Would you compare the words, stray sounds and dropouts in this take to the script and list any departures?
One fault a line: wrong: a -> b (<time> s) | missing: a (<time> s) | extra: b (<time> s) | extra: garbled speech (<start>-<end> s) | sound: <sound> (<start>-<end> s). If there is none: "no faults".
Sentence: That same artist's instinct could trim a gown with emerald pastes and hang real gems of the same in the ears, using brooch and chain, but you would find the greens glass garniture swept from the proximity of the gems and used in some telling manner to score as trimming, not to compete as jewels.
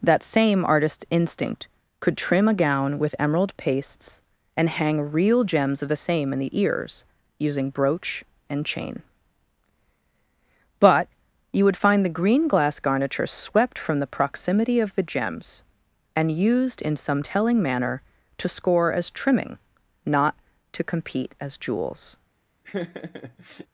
wrong: greens -> green (12.2 s)
sound: laugh (22.6-23.7 s)